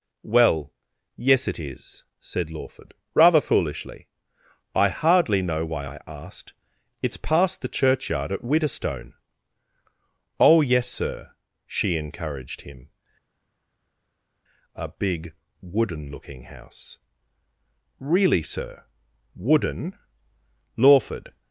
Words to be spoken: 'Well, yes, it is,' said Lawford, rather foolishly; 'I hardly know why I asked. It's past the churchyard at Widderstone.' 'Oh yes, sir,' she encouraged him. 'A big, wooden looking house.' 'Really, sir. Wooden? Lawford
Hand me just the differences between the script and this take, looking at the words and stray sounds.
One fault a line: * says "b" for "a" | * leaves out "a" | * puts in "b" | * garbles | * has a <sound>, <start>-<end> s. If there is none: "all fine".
all fine